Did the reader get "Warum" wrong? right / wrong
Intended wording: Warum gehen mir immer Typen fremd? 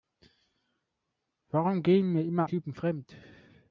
right